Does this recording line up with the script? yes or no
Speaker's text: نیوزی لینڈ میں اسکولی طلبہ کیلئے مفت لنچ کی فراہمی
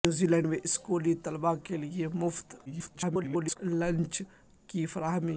no